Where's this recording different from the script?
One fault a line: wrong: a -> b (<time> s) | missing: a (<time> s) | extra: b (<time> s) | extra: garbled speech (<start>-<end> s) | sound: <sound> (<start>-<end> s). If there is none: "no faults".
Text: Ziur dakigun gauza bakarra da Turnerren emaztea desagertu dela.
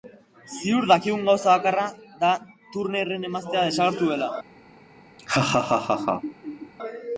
sound: laugh (5.2-6.7 s)